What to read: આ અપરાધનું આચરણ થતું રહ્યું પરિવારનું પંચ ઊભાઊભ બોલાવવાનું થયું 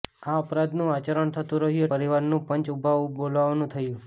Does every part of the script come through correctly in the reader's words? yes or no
yes